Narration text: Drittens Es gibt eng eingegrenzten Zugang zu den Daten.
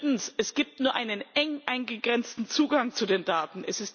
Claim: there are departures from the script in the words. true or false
true